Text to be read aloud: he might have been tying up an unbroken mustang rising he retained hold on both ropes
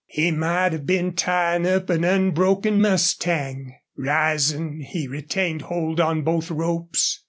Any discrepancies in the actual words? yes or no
no